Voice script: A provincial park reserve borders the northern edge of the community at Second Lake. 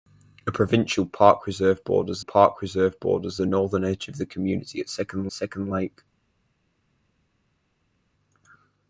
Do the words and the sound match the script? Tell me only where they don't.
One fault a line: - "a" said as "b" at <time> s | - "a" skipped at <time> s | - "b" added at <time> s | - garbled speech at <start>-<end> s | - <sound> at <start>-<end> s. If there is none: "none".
- "park reserve borders" added at 2.2 s
- "Second" added at 5.3 s